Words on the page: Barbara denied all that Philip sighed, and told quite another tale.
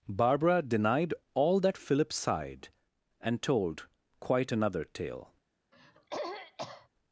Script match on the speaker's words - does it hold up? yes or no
yes